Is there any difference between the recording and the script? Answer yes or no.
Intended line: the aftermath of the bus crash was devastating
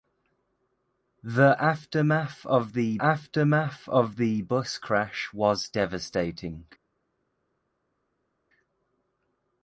yes